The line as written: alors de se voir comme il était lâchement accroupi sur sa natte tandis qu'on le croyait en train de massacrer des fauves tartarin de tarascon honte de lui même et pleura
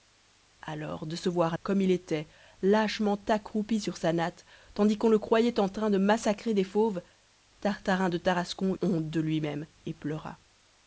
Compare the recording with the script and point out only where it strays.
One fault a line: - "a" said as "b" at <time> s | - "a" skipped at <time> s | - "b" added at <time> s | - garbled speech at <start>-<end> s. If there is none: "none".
none